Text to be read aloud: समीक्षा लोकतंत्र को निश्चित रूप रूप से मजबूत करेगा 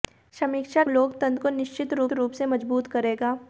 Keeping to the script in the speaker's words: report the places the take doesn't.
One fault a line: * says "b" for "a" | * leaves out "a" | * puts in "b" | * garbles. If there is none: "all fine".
all fine